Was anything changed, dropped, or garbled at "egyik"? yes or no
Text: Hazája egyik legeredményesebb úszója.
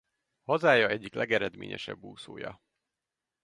no